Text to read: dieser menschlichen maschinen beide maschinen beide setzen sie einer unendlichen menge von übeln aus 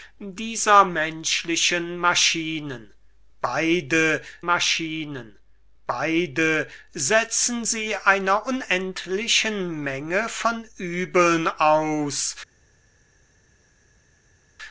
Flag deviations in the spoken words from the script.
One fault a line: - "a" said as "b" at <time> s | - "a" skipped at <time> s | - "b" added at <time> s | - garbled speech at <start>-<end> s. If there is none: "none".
none